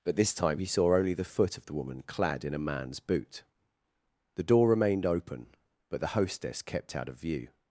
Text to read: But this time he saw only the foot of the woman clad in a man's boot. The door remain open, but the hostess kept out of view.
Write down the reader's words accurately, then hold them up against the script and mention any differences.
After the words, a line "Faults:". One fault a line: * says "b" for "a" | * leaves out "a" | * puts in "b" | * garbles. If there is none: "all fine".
But this time he saw only the foot of the woman clad in a man's boot. The door remained open, but the hostess kept out of view.
Faults:
* says "remained" for "remain"